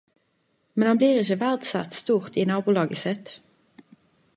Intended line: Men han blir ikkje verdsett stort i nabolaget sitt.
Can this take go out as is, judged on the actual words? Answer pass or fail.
pass